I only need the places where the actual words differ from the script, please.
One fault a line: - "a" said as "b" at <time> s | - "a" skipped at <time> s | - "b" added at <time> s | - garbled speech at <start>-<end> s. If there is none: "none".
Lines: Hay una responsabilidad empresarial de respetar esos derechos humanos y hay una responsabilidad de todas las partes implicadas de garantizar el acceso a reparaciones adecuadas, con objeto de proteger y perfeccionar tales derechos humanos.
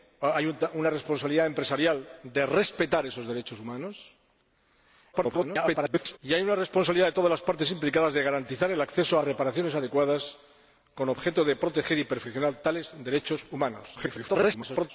- garbled speech at 5.1-6.2 s
- garbled speech at 14.0-14.9 s